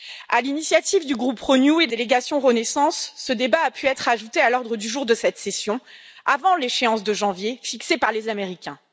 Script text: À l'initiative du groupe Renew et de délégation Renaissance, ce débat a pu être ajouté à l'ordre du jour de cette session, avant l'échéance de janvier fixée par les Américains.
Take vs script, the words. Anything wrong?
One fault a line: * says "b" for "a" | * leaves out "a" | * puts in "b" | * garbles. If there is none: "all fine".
all fine